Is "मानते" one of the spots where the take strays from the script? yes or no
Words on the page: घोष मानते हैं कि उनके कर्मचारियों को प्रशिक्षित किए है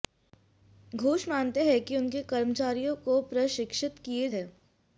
no